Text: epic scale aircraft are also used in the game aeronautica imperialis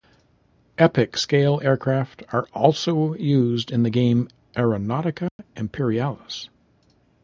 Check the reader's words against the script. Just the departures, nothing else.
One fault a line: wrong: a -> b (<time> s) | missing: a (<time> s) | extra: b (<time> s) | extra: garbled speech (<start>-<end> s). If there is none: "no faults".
no faults